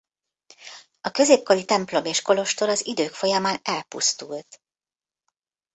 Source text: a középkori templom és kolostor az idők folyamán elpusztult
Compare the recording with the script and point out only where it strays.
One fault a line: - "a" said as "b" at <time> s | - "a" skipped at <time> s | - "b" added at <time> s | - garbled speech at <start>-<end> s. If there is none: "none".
none